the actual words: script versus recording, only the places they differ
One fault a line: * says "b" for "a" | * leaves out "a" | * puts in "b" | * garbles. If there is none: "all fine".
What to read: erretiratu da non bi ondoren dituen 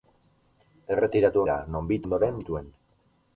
all fine